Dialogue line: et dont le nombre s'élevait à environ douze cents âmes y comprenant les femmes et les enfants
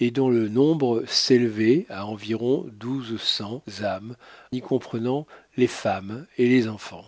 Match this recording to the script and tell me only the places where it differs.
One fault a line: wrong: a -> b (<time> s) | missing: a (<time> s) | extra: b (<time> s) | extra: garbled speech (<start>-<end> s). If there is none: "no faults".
no faults